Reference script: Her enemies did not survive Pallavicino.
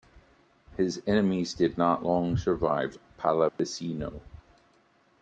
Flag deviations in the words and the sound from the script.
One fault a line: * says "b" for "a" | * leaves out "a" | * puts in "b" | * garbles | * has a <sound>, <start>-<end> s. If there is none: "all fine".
* says "His" for "Her"
* puts in "long"
* has a dropout, 3.5-3.6 s